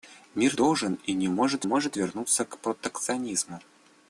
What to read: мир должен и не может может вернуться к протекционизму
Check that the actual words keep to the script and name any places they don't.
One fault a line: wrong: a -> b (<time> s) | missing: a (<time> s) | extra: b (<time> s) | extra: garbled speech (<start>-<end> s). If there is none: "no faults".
no faults